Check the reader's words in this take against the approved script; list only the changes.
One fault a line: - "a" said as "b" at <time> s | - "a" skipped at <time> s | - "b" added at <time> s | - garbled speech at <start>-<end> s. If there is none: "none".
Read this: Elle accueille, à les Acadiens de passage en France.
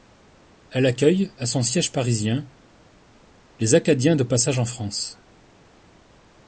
- "son siège parisien" added at 1.4 s